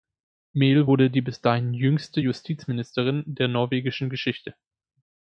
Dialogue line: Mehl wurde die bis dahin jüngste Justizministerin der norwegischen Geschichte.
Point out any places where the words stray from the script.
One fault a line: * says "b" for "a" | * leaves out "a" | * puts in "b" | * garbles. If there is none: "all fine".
all fine